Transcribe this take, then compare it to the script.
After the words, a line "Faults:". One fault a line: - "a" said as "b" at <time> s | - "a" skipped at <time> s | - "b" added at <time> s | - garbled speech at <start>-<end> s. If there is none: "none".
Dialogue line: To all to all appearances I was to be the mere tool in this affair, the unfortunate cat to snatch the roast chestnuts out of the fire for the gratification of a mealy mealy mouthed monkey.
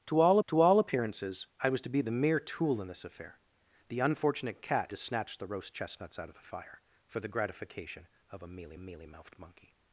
To all to all appearances I was to be the mere tool in this affair, the unfortunate cat to snatch the roast chestnuts out of the fire for the gratification of a mealy mealy mouthed monkey.
Faults:
none